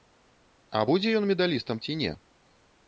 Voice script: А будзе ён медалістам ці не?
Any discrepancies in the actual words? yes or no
no